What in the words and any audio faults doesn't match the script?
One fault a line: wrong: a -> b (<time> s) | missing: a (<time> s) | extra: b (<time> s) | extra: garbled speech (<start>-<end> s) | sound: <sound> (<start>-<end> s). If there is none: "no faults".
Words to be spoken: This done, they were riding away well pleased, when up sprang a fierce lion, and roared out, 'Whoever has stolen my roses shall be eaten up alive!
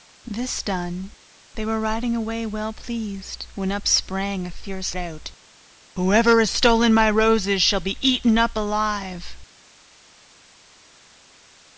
missing: lion and roared (5.0 s)